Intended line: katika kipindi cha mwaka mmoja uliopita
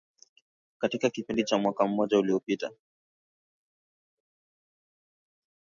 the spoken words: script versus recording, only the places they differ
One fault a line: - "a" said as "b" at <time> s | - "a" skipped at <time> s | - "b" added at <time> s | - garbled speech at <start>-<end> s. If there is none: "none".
none